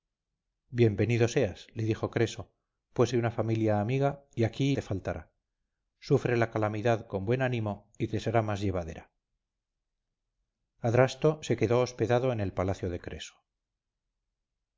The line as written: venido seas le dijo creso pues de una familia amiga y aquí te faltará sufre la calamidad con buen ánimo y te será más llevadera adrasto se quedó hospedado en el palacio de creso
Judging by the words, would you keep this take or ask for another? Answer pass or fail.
pass